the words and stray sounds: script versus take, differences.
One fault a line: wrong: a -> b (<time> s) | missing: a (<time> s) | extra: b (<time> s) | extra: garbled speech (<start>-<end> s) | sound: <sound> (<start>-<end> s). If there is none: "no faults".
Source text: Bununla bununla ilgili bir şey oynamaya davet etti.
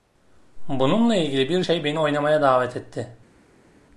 missing: bununla (1.1 s)
extra: beni (1.8 s)